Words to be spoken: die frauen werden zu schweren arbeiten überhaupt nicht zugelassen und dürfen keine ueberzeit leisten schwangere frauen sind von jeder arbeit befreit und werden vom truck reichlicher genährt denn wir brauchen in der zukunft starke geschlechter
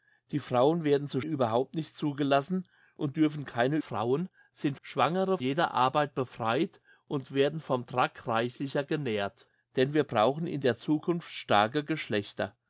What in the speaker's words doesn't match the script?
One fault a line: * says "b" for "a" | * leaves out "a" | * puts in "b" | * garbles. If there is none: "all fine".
* leaves out "schweren arbeiten"
* leaves out "ueberzeit leisten schwangere"
* says "schwangere" for "von"